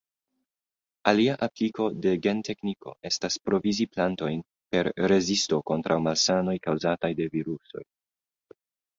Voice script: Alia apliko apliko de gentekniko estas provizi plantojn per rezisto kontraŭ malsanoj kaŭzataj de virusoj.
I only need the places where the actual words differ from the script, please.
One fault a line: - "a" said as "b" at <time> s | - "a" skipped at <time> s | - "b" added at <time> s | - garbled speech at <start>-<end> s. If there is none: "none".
- "apliko" skipped at 1.9 s